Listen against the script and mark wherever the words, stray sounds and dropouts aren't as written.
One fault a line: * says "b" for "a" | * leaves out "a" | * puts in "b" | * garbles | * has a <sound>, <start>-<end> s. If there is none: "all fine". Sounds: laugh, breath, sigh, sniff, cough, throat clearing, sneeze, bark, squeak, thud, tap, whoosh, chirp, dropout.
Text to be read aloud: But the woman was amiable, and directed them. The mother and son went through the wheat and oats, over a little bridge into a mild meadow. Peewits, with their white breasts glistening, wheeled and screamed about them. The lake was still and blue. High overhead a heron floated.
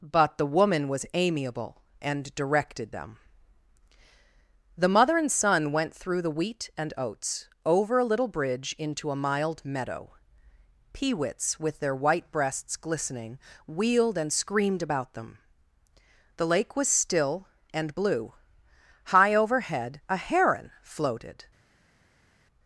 all fine